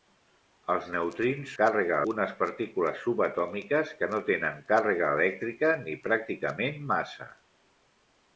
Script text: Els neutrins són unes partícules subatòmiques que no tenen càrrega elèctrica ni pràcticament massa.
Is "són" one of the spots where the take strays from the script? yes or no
yes